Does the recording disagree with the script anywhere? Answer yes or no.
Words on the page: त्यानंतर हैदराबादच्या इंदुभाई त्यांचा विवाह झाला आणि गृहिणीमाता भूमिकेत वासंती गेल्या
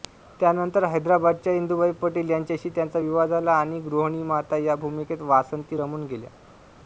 yes